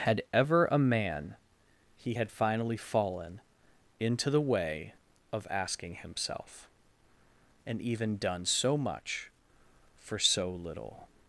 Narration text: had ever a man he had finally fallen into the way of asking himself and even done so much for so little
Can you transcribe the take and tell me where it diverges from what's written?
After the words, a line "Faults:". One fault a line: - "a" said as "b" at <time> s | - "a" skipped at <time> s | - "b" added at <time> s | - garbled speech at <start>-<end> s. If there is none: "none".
had ever a man he had finally fallen into the way of asking himself and even done so much for so little
Faults:
none